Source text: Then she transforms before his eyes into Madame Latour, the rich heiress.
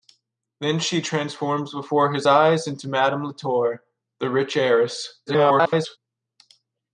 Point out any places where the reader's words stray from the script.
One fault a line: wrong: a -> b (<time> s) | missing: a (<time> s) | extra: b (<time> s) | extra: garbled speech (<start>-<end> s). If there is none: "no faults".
extra: garbled speech (5.3-6.0 s)